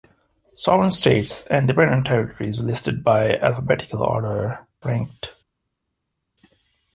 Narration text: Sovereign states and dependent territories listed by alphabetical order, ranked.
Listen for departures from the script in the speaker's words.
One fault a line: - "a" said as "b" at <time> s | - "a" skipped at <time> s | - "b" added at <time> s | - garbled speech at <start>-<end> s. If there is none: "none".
none